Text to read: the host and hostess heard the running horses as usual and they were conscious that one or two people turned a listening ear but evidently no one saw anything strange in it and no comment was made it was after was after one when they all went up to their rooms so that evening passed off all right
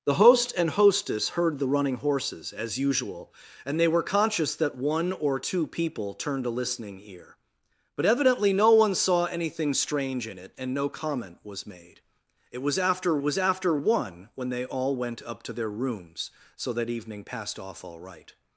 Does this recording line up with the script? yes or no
yes